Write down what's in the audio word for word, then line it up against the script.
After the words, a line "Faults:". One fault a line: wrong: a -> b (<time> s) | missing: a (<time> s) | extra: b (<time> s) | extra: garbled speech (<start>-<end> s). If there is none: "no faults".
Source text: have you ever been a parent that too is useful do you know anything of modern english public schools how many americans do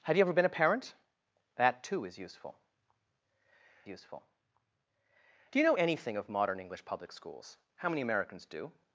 have you ever been a parent that too is useful useful do you know anything of modern english public schools how many americans do
Faults:
extra: useful (3.9 s)